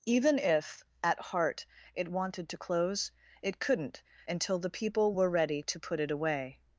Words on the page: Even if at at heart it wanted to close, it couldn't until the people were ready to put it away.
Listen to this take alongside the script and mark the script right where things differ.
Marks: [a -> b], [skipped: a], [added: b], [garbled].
Even if at [skipped: at] heart it wanted to close, it couldn't until the people were ready to put it away.